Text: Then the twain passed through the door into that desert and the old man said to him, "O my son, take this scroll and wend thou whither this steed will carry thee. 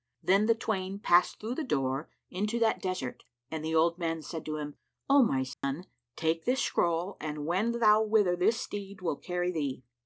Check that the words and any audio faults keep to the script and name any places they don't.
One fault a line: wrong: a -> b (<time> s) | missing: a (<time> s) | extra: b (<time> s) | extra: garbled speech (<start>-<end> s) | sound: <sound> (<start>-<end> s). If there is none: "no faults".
sound: dropout (5.5-5.6 s)